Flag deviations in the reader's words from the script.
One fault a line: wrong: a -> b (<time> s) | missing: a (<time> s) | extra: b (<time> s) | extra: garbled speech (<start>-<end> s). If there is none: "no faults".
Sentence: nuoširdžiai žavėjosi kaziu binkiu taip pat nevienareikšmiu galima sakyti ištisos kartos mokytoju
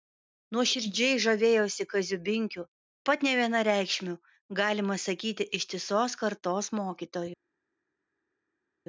missing: taip (2.6 s)